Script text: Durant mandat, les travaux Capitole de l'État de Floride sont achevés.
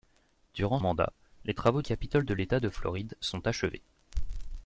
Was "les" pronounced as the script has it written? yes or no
yes